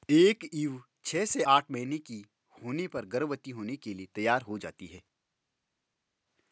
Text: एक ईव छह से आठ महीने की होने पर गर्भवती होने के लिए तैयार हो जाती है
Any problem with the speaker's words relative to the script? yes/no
no